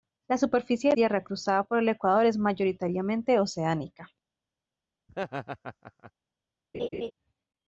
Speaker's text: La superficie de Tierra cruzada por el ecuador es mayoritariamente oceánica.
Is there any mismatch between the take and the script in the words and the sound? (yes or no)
yes